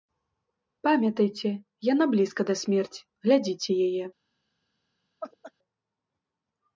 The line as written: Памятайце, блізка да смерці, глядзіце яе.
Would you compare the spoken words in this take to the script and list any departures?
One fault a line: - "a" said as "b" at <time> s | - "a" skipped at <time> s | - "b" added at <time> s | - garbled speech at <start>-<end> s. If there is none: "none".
- "яна" added at 1.9 s